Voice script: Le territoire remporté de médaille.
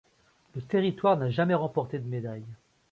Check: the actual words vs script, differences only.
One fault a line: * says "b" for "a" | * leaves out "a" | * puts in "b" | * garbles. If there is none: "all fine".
* puts in "n'a jamais"